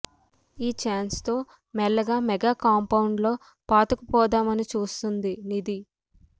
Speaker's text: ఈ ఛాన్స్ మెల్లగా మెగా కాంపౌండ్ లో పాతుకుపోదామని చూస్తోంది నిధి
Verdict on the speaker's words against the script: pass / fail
fail